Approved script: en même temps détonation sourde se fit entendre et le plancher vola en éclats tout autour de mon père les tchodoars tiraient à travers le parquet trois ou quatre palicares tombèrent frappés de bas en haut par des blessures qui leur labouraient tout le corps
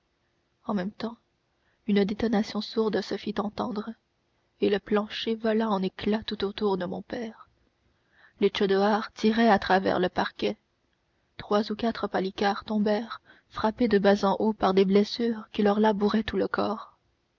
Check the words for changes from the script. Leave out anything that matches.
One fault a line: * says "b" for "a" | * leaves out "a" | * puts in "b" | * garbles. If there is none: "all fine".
* puts in "une"